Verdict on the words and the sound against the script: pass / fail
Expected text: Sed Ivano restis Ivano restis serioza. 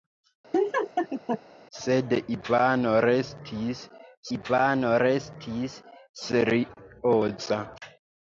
fail